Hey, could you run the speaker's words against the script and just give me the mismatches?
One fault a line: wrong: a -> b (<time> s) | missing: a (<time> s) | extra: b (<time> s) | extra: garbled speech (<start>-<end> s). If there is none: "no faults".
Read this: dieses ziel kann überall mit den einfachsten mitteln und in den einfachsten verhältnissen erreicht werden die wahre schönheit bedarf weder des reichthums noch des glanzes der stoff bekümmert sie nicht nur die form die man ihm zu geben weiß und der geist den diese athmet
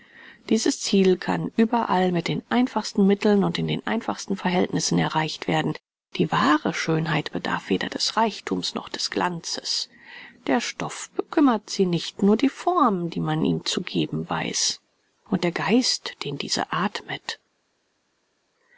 no faults